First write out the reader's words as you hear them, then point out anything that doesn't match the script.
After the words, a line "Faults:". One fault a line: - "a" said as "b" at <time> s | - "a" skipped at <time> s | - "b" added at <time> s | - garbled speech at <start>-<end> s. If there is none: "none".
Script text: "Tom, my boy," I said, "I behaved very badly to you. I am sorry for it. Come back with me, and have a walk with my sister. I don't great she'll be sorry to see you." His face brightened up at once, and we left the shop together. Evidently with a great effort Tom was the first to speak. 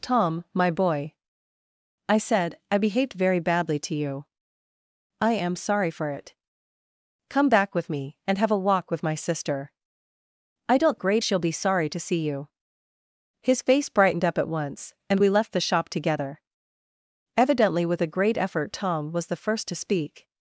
"Tom, my boy," I said, "I behaved very badly to you. I am sorry for it. Come back with me, and have a walk with my sister. I don't great she'll be sorry to see you." His face brightened up at once, and we left the shop together. Evidently with a great effort Tom was the first to speak.
Faults:
none